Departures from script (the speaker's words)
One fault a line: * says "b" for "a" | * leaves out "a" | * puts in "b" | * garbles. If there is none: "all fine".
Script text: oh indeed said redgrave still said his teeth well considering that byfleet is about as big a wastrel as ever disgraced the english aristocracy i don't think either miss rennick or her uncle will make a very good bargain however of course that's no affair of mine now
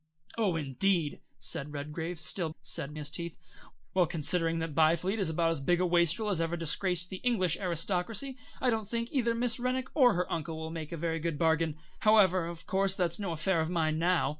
all fine